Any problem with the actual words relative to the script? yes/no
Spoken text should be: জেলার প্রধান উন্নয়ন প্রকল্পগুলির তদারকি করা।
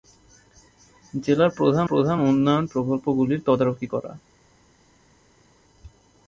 yes